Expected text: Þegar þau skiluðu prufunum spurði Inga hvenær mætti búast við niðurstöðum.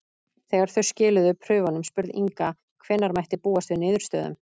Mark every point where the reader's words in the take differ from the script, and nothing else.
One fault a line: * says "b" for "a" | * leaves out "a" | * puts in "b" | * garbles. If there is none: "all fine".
all fine